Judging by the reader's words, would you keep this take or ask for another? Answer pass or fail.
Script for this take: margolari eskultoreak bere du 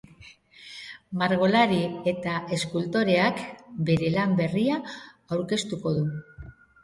fail